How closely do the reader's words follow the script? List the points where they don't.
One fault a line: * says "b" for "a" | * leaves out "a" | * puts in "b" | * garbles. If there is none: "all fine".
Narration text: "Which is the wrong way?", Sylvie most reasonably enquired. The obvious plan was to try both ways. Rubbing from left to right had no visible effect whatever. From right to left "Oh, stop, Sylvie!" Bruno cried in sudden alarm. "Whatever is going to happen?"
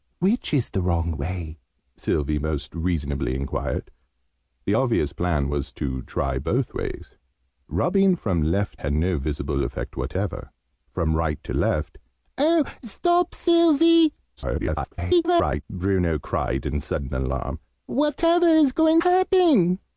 * leaves out "to right"
* garbles
* leaves out "to"